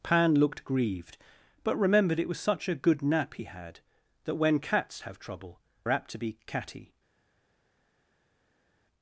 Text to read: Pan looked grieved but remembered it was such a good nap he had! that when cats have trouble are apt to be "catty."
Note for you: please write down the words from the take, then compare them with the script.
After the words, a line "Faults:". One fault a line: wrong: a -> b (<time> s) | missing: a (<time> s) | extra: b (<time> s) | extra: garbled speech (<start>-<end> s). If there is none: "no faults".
Pan looked grieved but remembered it was such a good nap he had! that when cats have trouble are apt to be "catty."
Faults:
no faults